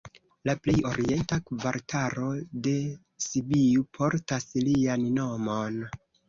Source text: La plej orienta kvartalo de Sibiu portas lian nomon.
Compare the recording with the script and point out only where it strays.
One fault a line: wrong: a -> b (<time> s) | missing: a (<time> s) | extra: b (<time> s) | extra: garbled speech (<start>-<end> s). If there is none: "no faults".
no faults